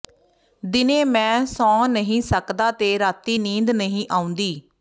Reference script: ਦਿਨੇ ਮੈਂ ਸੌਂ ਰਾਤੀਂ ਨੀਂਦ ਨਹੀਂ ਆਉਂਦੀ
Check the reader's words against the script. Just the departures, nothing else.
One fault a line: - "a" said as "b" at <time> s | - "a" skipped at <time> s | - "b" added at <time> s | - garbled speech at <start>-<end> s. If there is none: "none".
- "ਨਹੀਂ ਸਕਦਾ ਤੇ" added at 1.9 s